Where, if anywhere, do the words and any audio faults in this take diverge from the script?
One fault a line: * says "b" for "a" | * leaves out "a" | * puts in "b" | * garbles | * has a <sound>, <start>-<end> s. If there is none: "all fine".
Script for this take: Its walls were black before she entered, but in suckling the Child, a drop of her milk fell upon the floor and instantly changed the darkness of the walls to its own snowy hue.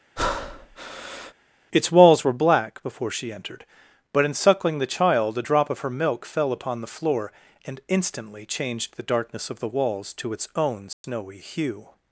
* has a breath, 0.2-1.3 s
* has a dropout, 10.9-11.0 s